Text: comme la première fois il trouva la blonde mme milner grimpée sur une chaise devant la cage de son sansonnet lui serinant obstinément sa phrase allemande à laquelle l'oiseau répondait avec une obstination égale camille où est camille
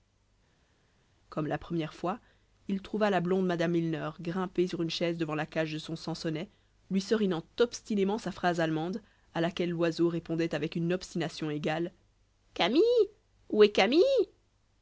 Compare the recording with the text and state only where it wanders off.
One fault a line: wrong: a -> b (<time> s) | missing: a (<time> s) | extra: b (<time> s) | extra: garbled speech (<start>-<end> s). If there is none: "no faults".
no faults